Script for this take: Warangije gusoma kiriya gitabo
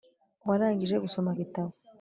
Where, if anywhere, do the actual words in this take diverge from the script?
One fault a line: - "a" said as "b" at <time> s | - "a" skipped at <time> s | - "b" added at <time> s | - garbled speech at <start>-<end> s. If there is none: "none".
- "kiriya" skipped at 1.3 s